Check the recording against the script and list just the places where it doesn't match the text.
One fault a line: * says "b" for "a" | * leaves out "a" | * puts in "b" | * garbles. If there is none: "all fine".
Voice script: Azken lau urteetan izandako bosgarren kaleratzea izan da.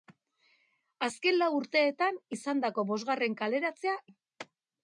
* leaves out "izan"